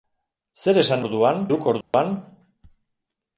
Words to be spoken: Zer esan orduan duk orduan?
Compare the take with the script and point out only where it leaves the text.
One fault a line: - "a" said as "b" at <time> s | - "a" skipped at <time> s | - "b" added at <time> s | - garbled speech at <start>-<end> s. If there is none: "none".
none